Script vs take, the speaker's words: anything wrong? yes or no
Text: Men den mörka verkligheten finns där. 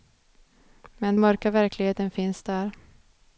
yes